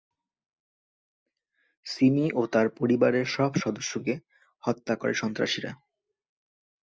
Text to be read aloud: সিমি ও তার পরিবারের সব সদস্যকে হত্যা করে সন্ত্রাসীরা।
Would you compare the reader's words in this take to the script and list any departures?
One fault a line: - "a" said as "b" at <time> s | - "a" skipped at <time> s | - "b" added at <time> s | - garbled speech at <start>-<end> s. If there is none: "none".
none